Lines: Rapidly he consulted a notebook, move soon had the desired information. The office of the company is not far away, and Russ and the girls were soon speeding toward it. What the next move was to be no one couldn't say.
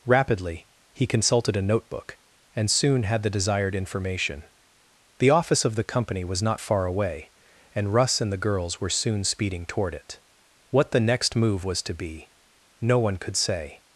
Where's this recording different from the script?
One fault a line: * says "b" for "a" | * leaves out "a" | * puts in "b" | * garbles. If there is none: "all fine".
* says "and" for "move"
* says "was" for "is"
* says "could" for "couldn't"